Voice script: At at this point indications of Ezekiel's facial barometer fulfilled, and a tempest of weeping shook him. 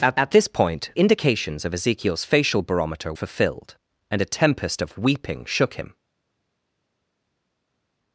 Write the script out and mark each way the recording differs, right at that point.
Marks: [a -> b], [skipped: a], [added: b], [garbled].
At at this point indications of Ezekiel's facial barometer fulfilled, and a tempest of weeping shook him.